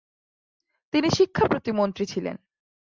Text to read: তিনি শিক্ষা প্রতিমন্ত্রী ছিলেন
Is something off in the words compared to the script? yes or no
no